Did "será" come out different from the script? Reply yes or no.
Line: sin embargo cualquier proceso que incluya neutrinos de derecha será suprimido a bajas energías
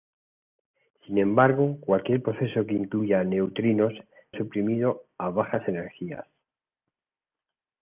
yes